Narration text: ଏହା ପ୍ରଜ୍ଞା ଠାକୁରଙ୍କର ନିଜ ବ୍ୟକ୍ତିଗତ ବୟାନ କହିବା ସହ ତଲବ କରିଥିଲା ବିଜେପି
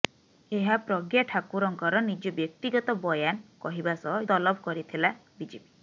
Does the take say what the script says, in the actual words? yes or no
yes